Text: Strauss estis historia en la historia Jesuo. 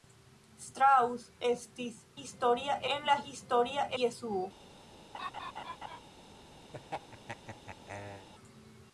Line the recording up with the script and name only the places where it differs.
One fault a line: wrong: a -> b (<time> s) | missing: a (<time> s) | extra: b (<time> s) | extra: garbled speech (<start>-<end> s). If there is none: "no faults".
no faults